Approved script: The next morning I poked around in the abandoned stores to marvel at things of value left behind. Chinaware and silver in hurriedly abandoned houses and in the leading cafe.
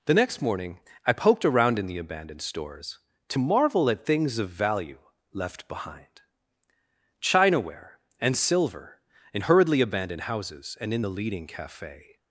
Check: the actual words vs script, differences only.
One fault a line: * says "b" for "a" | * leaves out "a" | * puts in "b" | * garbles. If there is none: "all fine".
all fine